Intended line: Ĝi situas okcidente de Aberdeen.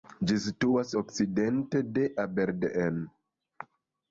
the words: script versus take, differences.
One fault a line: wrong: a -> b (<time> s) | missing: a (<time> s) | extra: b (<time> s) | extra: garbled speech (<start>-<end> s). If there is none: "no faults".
no faults